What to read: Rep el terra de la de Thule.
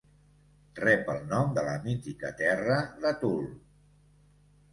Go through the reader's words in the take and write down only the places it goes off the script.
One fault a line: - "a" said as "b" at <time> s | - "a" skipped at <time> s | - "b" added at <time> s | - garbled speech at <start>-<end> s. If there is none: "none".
- "terra" said as "nom" at 1.3 s
- "mítica terra" added at 1.9 s